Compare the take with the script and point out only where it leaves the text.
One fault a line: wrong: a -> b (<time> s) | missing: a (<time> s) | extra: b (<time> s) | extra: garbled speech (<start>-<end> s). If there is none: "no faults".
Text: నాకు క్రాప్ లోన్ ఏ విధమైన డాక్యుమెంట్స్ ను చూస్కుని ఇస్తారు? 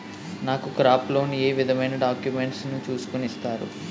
no faults